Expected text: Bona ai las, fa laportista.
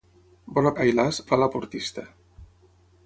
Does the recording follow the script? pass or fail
pass